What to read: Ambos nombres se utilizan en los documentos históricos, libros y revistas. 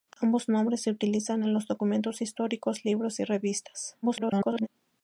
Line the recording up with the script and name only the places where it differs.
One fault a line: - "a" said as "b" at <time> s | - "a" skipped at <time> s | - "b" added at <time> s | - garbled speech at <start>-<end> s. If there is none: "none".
- garbled speech at 4.0-4.7 s